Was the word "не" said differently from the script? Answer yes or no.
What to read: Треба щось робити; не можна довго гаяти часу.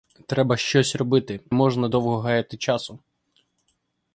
yes